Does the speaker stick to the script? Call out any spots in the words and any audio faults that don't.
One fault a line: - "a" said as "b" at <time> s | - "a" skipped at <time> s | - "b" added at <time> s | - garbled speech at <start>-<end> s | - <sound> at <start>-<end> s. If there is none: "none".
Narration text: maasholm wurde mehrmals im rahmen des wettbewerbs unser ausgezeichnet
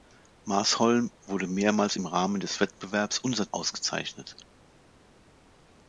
none